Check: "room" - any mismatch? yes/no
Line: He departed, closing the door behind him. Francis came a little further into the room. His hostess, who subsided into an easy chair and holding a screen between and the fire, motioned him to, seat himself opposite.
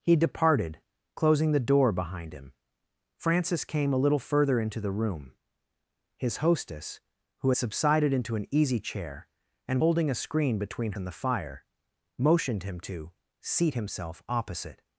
no